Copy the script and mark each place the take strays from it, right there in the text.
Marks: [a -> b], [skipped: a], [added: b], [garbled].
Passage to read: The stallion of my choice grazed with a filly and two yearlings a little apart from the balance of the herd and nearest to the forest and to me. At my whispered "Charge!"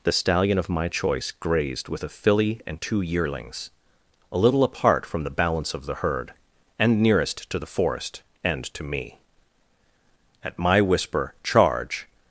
The stallion of my choice grazed with a filly and two yearlings a little apart from the balance of the herd and nearest to the forest and to me. At my [whispered -> whisper] "Charge!"